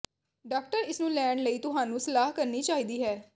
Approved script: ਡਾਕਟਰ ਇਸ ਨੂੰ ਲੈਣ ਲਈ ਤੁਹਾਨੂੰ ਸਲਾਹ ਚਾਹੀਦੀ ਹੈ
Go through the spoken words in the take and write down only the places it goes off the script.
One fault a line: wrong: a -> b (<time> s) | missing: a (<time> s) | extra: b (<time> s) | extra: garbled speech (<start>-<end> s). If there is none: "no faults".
extra: ਕਰਨੀ (2.3 s)